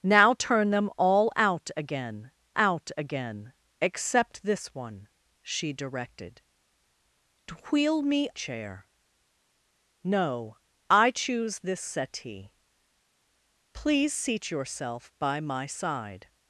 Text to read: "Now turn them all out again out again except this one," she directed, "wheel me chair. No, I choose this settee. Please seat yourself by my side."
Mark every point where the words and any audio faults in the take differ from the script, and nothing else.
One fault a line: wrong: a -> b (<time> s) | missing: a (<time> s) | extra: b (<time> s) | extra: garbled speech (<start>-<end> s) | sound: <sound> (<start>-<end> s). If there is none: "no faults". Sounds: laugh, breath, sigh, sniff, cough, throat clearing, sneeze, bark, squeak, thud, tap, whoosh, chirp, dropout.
no faults